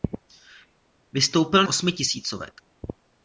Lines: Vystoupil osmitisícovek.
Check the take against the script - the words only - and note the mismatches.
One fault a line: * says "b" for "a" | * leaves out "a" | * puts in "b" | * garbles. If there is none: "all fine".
all fine